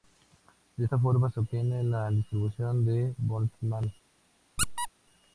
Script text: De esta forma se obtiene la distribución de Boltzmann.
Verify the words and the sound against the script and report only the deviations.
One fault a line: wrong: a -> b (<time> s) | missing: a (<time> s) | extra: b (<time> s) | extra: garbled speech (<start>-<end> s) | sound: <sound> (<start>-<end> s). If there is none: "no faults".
sound: squeak (4.6-4.9 s)